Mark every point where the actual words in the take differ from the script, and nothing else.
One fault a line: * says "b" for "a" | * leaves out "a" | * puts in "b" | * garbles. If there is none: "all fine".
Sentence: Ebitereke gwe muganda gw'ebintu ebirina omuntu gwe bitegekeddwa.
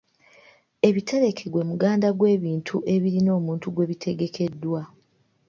all fine